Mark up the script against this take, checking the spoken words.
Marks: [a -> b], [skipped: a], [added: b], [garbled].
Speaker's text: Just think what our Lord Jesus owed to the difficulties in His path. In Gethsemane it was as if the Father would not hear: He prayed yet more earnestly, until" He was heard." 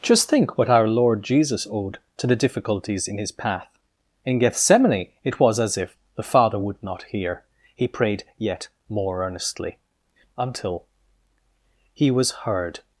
Just think what our Lord Jesus owed to the difficulties in His path. In Gethsemane it was as if the Father would not hear: He prayed yet more earnestly, until" He was heard."